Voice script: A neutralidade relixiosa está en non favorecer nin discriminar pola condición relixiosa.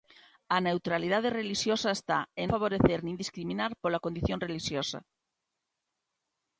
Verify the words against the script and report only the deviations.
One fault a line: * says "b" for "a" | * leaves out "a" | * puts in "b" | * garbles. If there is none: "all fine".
* leaves out "non"